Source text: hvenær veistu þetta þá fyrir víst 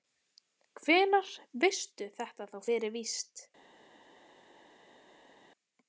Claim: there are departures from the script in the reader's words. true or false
false